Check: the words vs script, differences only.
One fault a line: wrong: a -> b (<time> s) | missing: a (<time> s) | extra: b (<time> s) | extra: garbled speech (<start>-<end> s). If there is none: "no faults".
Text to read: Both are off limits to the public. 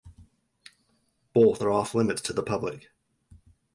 no faults